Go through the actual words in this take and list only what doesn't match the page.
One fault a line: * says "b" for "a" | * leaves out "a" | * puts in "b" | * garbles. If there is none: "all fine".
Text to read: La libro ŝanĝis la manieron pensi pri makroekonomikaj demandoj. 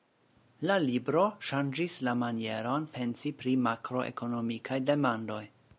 all fine